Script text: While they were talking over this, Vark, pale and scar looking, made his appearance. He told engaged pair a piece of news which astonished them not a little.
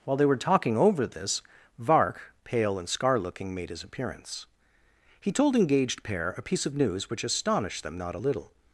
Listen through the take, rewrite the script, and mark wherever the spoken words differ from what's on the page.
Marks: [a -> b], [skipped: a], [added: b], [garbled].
While they were talking over this, Vark, pale and scar looking, made his appearance. He told engaged pair a piece of news which astonished them not a little.